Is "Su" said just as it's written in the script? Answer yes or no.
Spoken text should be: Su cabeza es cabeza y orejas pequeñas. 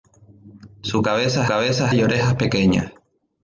yes